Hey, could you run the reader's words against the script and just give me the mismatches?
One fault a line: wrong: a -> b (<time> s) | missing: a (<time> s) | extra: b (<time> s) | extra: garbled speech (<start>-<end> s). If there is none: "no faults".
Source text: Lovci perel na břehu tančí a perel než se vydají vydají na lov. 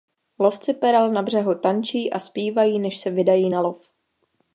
wrong: perel -> zpívají (2.2 s)
missing: vydají (3.5 s)